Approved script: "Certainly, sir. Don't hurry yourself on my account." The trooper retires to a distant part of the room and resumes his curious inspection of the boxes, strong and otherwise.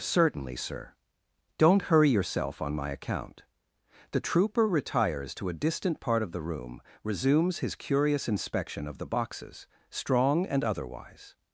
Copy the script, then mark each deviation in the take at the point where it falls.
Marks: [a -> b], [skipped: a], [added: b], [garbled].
"Certainly, sir. Don't hurry yourself on my account." The trooper retires to a distant part of the room [skipped: and] resumes his curious inspection of the boxes, strong and otherwise.